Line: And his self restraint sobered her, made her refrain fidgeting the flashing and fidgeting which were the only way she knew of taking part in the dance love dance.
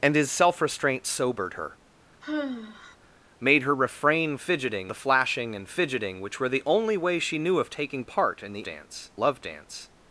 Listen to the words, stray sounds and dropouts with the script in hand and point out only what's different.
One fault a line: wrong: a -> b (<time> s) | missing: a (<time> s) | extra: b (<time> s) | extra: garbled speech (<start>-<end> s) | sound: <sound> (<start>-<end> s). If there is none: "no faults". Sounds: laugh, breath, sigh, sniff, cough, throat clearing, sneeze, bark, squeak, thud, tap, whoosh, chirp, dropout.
sound: sigh (2.2-3.0 s)